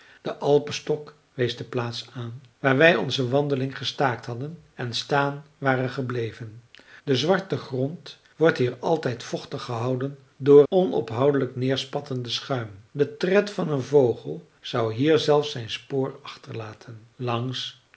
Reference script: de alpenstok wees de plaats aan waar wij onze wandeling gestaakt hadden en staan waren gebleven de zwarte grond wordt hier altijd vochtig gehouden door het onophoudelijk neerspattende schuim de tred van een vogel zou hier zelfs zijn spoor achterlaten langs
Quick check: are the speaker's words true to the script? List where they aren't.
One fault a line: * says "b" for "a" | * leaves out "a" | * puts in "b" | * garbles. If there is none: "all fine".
* leaves out "het"